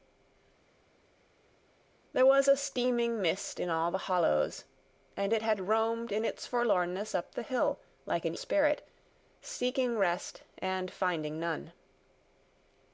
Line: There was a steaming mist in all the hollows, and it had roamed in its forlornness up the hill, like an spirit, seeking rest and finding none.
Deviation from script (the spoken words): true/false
false